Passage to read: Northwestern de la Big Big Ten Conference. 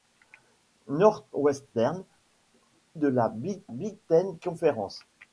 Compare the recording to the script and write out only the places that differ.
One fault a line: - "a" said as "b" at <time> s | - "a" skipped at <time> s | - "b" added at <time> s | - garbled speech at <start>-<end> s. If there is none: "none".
none